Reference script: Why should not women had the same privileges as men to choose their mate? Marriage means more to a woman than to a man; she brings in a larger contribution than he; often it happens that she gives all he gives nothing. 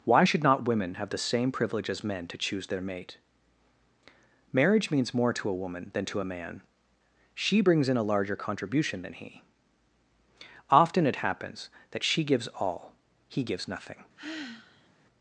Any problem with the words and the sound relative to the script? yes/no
yes